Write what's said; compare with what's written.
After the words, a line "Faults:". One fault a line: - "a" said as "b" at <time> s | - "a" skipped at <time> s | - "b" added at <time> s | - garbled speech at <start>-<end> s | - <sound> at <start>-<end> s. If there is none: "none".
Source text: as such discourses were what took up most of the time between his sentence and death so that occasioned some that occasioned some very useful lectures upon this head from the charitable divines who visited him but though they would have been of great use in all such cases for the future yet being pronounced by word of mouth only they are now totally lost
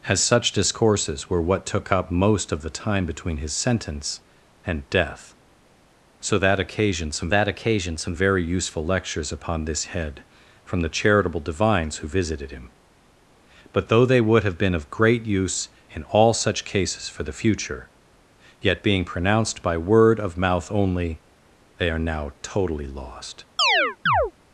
as such discourses were what took up most of the time between his sentence and death so that occasioned some that occasioned some very useful lectures upon this head from the charitable divines who visited him but though they would have been of great use in all such cases for the future yet being pronounced by word of mouth only they are now totally lost
Faults:
- chirp at 23.6-24.3 s